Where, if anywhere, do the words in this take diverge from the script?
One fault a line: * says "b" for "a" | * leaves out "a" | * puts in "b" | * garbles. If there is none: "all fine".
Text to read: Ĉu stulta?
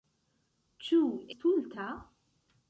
all fine